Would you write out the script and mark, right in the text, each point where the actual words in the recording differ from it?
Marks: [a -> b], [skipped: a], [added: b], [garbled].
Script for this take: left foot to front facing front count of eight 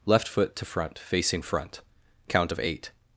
left foot to front facing front count of eight